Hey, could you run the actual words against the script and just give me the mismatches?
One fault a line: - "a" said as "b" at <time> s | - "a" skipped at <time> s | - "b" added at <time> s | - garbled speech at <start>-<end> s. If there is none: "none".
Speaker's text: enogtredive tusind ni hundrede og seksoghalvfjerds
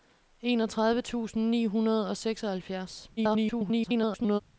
- garbled speech at 3.2-4.4 s